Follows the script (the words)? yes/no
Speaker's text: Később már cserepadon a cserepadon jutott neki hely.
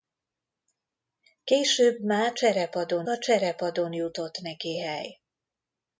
yes